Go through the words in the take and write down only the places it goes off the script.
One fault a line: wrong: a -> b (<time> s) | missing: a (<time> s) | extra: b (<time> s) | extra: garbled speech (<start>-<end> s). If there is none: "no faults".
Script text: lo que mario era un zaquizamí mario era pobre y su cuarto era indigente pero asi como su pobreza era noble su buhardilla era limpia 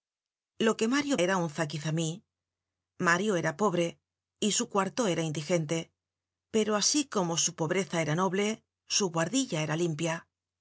no faults